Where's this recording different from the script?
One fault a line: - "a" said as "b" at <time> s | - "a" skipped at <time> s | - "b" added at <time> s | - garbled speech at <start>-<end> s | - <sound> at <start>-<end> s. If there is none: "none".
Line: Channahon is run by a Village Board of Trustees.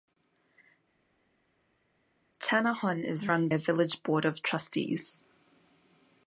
- "by" skipped at 3.5 s